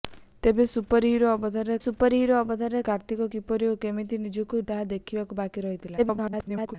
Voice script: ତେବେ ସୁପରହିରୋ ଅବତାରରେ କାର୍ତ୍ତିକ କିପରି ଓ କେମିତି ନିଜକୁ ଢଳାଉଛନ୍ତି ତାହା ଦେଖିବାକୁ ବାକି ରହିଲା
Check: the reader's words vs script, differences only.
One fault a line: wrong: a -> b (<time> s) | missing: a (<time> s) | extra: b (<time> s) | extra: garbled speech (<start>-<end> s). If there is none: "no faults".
extra: ସୁପରହିରୋ ଅବତାରରେ (1.8 s)
missing: ଢଳାଉଛନ୍ତି (4.6 s)
extra: garbled speech (6.0-6.8 s)